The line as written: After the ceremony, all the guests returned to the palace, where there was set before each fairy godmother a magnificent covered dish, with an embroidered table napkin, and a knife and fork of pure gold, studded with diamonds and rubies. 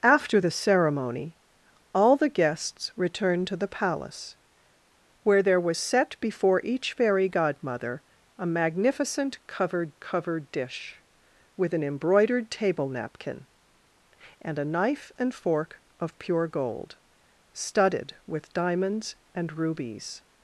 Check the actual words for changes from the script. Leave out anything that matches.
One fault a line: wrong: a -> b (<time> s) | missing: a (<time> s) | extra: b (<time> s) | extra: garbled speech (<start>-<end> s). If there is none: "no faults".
extra: covered (10.0 s)